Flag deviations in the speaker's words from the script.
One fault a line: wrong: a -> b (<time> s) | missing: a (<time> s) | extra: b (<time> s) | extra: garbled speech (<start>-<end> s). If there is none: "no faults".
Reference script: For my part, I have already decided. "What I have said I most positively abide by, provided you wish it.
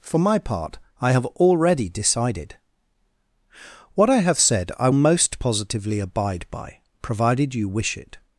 no faults